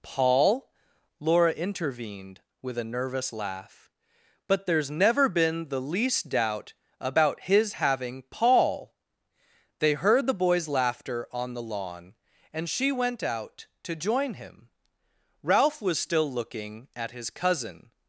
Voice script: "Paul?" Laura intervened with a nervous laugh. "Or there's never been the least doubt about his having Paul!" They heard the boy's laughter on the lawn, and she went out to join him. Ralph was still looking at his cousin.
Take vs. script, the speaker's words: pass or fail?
fail